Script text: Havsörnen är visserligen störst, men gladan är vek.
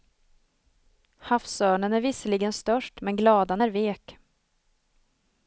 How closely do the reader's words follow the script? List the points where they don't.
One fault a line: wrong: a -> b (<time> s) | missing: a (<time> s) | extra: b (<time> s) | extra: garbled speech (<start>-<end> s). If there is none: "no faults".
no faults